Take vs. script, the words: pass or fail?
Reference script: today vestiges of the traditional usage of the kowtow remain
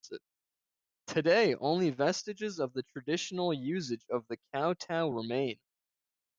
fail